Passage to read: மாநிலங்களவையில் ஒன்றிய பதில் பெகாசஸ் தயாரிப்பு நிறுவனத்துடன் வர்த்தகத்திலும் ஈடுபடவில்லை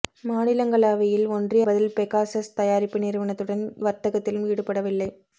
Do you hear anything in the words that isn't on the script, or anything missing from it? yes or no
no